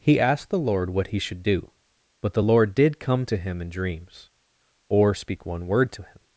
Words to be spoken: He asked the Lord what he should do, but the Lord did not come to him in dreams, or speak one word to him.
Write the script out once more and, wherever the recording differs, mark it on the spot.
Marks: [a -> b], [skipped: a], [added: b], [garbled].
He asked the Lord what he should do, but the Lord did [skipped: not] come to him in dreams, or speak one word to him.